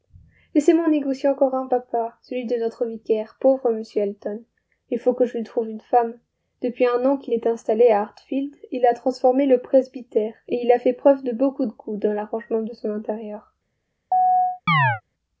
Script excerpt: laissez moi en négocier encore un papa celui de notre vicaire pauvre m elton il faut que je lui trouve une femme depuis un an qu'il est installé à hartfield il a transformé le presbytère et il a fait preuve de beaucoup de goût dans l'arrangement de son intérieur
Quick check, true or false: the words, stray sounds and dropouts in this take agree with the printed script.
false